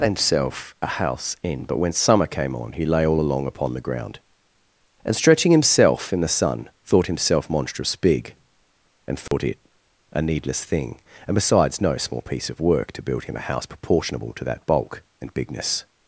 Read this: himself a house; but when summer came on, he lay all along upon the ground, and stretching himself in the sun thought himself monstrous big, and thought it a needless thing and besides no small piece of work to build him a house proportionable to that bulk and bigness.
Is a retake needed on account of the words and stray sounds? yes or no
yes